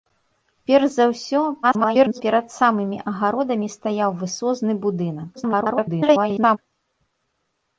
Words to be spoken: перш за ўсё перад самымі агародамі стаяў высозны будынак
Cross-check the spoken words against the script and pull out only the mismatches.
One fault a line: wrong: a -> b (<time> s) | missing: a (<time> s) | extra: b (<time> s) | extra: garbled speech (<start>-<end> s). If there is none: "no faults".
extra: garbled speech (1.6-2.2 s)
extra: garbled speech (5.4-6.6 s)